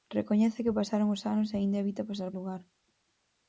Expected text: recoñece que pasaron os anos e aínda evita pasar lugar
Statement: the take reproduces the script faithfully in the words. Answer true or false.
true